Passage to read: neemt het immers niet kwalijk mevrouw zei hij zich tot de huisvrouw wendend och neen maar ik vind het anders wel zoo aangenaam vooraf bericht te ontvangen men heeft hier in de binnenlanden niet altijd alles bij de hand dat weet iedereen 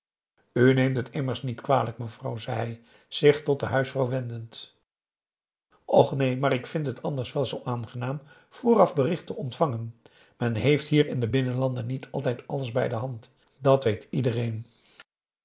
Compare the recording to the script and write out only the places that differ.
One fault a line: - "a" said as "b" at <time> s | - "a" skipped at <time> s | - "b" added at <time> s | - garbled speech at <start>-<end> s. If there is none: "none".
none